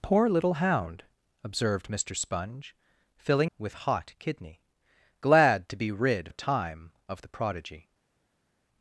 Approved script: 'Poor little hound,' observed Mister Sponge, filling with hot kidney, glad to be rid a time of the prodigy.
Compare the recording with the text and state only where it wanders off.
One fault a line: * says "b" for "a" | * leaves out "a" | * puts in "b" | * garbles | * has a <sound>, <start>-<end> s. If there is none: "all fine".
all fine